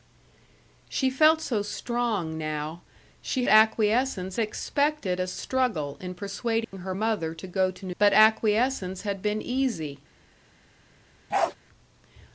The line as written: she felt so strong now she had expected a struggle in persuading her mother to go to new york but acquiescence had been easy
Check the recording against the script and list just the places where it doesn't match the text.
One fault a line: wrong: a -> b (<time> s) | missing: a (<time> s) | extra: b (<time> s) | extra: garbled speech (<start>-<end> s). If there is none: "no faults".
wrong: had -> acquiescence (3.5 s)
missing: york (8.0 s)